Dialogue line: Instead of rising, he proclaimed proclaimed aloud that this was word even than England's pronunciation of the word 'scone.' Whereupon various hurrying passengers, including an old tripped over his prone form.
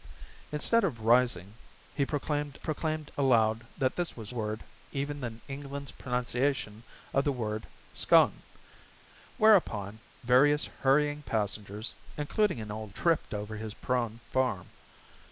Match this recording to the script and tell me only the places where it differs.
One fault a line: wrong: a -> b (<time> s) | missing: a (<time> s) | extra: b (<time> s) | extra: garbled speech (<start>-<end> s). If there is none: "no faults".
no faults